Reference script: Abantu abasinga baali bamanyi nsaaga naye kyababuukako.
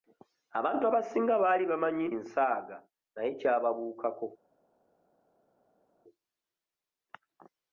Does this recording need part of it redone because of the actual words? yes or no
no